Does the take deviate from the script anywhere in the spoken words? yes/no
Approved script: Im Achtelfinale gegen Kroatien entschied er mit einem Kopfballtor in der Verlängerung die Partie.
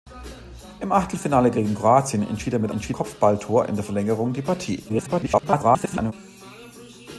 yes